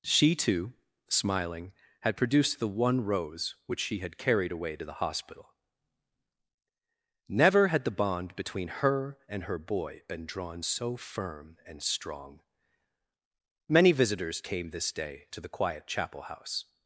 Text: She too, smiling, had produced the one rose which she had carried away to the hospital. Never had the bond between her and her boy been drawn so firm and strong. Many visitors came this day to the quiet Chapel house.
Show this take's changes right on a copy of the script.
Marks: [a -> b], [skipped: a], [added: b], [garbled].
She too, smiling, had produced the one rose which she had carried away to the hospital. Never had the bond between her and her boy been drawn so firm and strong. Many visitors came this day to the quiet Chapel house.